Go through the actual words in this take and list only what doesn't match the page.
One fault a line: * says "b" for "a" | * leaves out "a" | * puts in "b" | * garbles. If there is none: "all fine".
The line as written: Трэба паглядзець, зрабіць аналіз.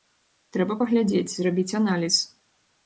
all fine